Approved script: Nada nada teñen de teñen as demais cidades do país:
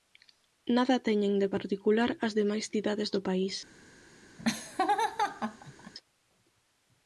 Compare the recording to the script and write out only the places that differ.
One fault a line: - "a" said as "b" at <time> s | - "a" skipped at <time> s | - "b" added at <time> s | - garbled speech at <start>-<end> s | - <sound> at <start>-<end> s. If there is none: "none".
- "nada" skipped at 1.0 s
- "teñen" said as "particular" at 1.5 s
- laugh at 4.4-5.9 s